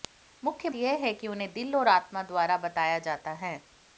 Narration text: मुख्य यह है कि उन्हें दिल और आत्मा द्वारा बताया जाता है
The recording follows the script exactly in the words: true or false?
true